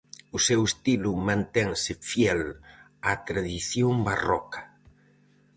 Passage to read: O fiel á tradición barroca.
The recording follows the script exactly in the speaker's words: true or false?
false